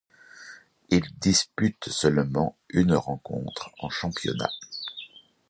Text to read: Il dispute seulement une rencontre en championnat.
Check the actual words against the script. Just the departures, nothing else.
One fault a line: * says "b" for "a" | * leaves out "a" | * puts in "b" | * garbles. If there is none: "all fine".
all fine